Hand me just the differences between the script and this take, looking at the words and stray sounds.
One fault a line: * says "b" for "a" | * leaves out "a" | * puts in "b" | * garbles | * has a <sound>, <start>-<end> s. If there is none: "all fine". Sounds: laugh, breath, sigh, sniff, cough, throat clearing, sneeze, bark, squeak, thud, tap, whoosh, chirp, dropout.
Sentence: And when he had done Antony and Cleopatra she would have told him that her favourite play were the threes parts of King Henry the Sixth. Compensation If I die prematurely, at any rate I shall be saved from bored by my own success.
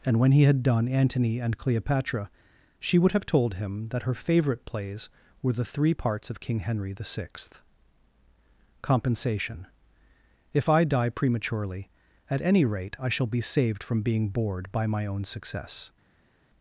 * says "plays" for "play"
* says "three" for "threes"
* puts in "being"